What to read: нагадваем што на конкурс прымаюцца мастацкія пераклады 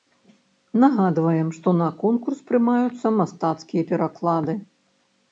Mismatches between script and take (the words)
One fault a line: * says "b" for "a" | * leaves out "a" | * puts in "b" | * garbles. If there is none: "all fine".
all fine